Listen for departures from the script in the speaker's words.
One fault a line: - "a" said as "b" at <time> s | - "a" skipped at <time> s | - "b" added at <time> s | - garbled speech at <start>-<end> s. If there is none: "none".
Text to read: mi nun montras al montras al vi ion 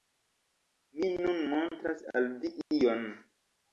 - "montras al" skipped at 2.3 s